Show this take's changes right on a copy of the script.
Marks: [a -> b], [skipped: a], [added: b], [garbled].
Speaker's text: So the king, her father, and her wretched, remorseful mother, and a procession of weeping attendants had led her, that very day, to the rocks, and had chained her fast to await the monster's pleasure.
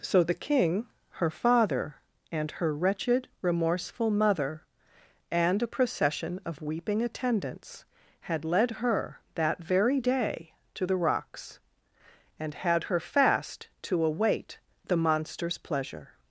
So the king, her father, and her wretched, remorseful mother, and a procession of weeping attendants had led her, that very day, to the rocks, and had [skipped: chained] her fast to await the monster's pleasure.